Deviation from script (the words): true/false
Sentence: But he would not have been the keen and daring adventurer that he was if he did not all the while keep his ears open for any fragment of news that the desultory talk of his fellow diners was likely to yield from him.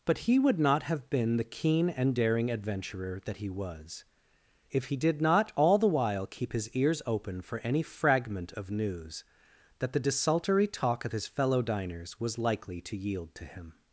true